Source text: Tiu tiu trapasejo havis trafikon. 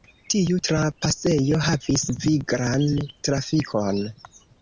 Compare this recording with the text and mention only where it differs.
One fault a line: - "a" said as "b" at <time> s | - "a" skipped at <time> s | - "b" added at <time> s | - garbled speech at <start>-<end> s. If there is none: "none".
- "tiu" skipped at 0.6 s
- "viglan" added at 2.3 s